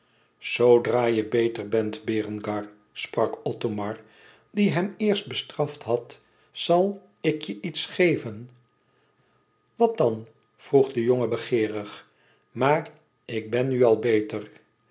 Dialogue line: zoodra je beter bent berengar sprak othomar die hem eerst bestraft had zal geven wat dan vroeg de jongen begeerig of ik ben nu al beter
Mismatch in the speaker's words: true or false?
true